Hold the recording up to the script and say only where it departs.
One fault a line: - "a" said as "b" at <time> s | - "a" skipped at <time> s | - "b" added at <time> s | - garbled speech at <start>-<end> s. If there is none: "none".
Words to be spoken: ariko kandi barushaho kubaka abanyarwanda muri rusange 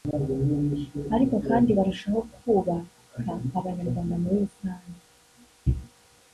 none